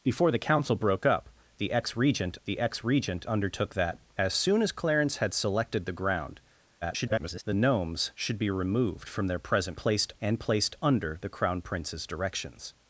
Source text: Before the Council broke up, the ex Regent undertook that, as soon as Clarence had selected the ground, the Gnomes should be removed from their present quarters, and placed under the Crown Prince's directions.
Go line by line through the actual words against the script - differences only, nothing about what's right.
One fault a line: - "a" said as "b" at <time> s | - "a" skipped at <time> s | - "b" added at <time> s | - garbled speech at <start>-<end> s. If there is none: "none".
- "the ex Regent" added at 2.4 s
- garbled speech at 6.8-7.4 s
- "quarters" said as "placed" at 9.8 s